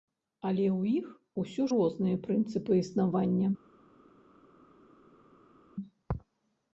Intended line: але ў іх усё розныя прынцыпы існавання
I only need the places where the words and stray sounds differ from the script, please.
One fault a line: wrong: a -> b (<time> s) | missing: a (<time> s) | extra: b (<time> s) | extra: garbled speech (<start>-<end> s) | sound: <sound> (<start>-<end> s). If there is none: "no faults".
no faults